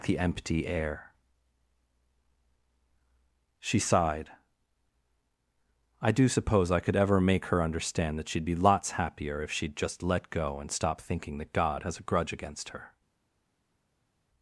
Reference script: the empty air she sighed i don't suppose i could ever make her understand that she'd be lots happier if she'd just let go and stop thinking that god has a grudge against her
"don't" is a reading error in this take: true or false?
true